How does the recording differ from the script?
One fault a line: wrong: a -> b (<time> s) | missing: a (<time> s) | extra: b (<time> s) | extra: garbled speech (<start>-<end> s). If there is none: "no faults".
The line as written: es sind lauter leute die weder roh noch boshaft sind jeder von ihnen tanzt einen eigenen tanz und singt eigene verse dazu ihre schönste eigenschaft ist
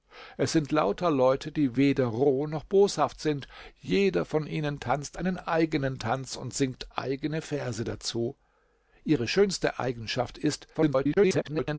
extra: garbled speech (10.7-11.8 s)